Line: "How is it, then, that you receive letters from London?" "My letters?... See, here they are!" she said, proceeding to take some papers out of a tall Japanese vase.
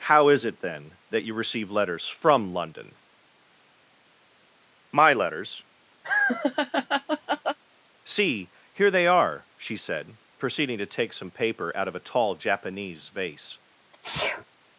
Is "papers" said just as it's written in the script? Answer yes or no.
no